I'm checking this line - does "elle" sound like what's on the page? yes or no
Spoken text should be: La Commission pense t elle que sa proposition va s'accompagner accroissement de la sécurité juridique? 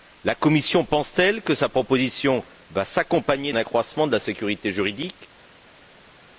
yes